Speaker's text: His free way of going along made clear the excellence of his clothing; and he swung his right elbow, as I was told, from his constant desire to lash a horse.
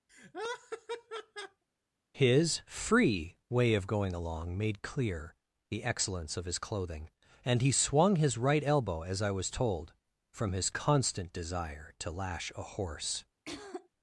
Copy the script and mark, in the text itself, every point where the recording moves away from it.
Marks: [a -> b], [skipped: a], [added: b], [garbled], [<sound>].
[laugh] His free way of going along made clear the excellence of his clothing; and he swung his right elbow, as I was told, from his constant desire to lash a horse. [throat clearing]